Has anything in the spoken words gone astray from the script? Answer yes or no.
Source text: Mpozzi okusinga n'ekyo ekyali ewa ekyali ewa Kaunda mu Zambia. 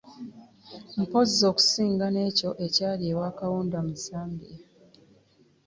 yes